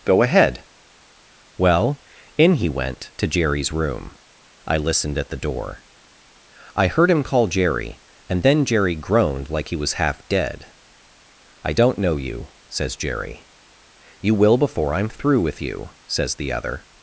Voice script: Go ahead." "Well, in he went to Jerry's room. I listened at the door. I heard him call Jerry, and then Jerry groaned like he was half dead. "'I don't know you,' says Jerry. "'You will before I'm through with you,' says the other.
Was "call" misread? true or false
false